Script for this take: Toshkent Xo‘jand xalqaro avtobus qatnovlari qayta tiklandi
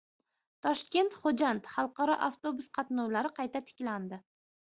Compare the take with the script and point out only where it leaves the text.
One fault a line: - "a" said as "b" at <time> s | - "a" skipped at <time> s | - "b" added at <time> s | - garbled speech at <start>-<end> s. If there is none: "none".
none